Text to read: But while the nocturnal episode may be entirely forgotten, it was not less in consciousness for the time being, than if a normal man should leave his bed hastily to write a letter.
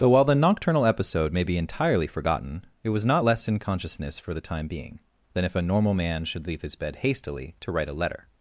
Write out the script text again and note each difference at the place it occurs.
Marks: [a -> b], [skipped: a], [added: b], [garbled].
But while the nocturnal episode may be entirely forgotten, it was not less in consciousness for the time being, than if a normal man should leave his bed hastily to write a letter.